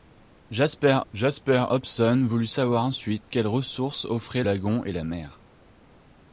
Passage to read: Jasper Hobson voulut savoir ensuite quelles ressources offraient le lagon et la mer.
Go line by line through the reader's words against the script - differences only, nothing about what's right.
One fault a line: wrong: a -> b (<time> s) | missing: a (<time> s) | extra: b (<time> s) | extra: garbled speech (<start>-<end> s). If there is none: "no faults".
extra: jasper (1.1 s)
missing: le (4.4 s)